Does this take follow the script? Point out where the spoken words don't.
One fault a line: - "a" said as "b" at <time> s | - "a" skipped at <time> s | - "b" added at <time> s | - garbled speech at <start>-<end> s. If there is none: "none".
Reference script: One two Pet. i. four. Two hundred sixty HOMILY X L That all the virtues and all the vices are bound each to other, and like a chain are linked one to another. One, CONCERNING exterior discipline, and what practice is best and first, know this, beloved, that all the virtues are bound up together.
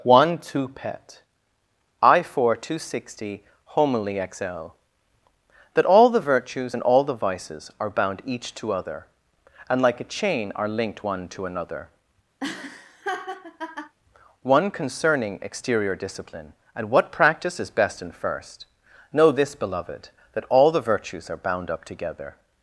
- "hundred" skipped at 2.8 s